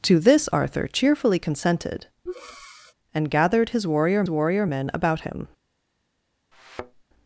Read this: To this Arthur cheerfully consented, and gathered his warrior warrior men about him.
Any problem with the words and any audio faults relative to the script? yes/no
yes